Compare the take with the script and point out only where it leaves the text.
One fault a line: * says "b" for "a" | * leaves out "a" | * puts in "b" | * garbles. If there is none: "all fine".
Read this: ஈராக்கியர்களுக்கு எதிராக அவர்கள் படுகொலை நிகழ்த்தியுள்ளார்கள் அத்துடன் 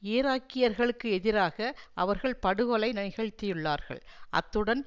all fine